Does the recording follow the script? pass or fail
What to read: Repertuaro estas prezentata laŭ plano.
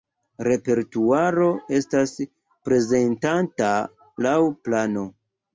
pass